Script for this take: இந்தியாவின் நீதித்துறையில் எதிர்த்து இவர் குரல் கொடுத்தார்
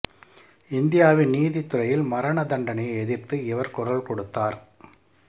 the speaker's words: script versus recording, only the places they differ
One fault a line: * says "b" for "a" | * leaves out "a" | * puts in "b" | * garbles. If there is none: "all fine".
* puts in "மரண தண்டனையை"